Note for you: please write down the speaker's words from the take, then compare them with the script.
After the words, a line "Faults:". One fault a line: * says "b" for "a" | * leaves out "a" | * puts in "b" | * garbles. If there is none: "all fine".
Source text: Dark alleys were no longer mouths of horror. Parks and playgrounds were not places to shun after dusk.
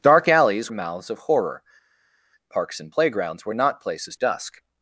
Dark alleys mouths of horror. Parks and playgrounds were not places dusk.
Faults:
* leaves out "were no longer"
* leaves out "to shun after"